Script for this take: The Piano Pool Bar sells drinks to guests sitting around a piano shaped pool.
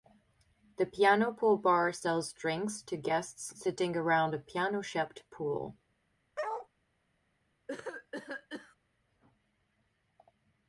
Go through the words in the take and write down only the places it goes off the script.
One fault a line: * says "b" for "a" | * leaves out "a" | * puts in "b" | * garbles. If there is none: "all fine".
all fine